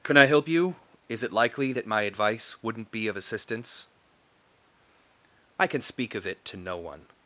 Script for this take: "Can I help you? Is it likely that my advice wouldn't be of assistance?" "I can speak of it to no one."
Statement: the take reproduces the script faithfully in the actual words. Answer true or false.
true